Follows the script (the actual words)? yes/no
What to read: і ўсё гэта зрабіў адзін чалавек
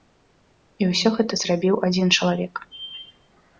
yes